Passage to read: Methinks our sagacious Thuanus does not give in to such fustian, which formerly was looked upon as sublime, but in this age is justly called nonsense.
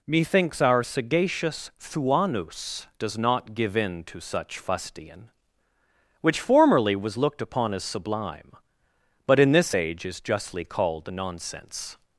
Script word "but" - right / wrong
right